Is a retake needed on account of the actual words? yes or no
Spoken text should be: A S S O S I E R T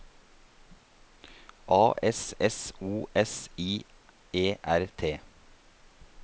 no